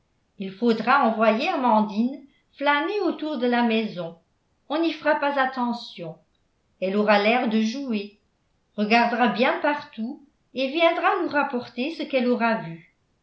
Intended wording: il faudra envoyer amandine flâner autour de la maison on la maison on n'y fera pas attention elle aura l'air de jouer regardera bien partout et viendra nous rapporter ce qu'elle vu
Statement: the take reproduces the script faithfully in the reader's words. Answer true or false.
false